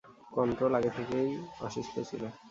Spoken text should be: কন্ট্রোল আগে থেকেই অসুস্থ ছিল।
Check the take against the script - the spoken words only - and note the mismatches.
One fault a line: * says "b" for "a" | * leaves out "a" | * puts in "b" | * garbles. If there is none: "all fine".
all fine